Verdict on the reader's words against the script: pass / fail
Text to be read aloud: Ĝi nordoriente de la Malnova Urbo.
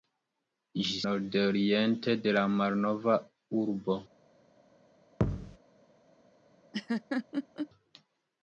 pass